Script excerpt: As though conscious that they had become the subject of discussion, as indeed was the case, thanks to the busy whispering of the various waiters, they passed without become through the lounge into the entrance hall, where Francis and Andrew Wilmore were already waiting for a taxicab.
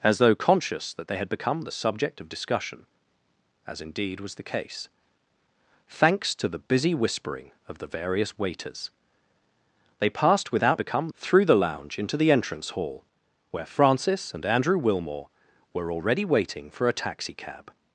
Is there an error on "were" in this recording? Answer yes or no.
no